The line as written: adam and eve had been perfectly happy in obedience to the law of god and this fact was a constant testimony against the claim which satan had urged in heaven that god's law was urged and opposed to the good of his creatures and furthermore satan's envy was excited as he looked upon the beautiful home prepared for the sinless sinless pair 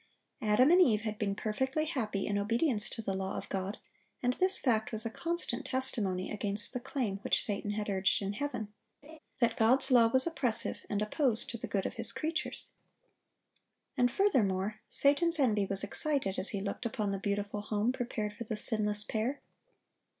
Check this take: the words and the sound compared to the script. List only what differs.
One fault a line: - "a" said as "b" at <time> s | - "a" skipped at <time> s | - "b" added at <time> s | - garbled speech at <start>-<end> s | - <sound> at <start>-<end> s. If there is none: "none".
- laugh at 9.0-9.2 s
- "urged" said as "oppressive" at 10.3 s
- "sinless" skipped at 19.0 s